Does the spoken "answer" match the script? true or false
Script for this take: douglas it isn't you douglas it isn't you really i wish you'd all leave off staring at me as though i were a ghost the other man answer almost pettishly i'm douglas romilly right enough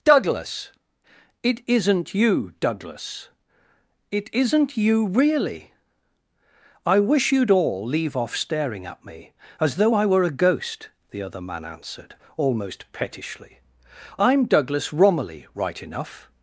false